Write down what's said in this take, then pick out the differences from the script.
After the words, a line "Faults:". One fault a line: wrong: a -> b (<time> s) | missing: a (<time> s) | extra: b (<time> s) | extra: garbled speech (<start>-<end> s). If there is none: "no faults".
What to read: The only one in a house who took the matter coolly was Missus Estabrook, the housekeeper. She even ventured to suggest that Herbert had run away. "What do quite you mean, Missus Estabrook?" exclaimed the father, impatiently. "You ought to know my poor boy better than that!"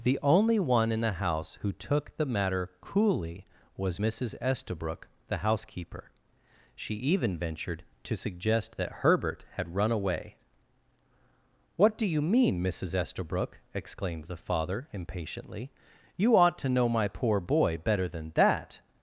The only one in the house who took the matter coolly was Missus Estabrook, the housekeeper. She even ventured to suggest that Herbert had run away. "What do you mean, Missus Estabrook?" exclaimed the father, impatiently. "You ought to know my poor boy better than that!"
Faults:
wrong: a -> the (1.0 s)
missing: quite (12.1 s)